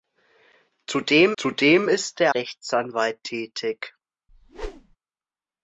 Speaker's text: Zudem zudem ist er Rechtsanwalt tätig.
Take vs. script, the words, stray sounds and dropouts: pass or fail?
fail